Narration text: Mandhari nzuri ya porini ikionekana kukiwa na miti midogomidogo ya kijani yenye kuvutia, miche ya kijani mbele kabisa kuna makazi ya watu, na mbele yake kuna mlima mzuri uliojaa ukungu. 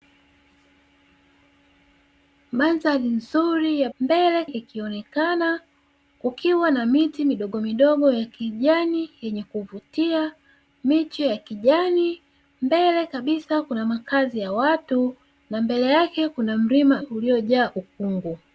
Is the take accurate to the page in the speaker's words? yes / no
no